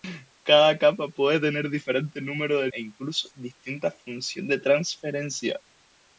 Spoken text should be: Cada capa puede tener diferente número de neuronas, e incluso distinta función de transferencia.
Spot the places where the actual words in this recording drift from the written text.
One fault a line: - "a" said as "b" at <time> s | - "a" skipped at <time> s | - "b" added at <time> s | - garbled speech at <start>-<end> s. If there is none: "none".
- "neuronas" skipped at 2.7 s